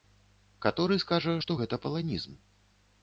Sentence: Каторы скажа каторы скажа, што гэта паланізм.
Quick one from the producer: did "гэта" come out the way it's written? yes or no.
yes